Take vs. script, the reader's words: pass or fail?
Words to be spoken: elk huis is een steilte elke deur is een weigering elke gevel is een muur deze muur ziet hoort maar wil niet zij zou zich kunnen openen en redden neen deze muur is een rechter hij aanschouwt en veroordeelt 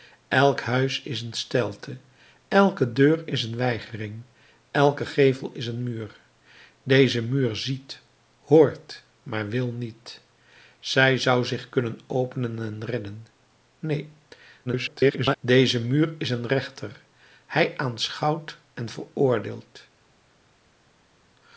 fail